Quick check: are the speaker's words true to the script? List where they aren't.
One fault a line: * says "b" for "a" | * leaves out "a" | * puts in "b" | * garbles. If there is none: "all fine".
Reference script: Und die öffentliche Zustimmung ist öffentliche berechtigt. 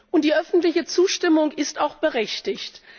* says "auch" for "öffentliche"